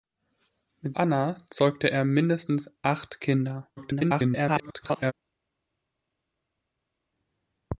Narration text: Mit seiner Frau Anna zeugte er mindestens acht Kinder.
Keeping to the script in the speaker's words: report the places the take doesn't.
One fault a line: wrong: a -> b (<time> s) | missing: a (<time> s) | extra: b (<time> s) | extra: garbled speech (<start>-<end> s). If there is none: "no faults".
missing: seiner Frau (1.0 s)
extra: garbled speech (3.8-5.1 s)